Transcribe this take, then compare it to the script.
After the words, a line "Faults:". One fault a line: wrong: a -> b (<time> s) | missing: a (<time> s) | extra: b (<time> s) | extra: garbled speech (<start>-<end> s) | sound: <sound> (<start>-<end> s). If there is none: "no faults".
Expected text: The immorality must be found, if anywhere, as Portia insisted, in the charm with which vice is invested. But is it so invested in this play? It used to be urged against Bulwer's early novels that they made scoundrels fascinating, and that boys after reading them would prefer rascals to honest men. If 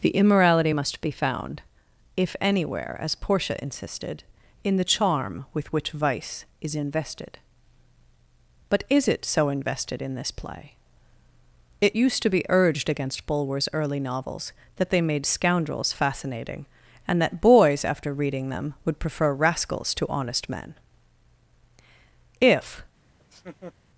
The immorality must be found, if anywhere, as Portia insisted, in the charm with which vice is invested. But is it so invested in this play? It used to be urged against Bulwer's early novels that they made scoundrels fascinating, and that boys after reading them would prefer rascals to honest men. If
Faults:
sound: laugh (23.2-23.7 s)